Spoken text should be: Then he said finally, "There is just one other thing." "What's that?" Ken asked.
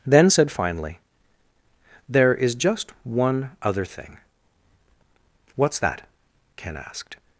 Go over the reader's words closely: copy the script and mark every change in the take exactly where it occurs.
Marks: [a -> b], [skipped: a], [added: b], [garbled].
Then [skipped: he] said finally, "There is just one other thing." "What's that?" Ken asked.